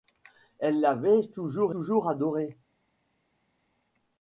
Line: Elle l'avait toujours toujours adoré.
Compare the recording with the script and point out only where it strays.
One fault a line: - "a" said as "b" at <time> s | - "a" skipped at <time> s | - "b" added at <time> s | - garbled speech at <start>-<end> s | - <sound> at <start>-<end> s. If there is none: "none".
none